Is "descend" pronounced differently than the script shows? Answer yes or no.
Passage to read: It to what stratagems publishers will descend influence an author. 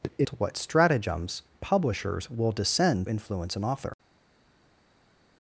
no